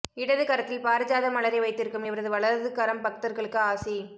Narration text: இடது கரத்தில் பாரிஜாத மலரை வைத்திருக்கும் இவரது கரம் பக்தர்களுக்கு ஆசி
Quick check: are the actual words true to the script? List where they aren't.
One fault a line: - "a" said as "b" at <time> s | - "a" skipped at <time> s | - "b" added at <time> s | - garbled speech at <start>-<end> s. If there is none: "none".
- "வலது" added at 2.3 s